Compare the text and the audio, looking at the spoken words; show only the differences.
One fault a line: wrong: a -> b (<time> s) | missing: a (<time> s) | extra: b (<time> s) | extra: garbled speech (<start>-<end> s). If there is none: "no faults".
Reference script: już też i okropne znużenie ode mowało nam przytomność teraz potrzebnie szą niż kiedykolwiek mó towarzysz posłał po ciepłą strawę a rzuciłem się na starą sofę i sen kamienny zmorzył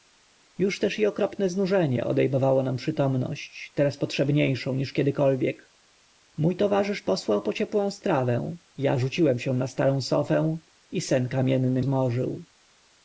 no faults